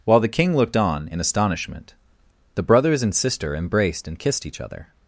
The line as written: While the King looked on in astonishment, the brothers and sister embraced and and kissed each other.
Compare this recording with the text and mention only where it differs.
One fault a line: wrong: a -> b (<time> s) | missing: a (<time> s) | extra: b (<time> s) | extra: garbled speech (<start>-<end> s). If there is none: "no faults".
missing: and (4.2 s)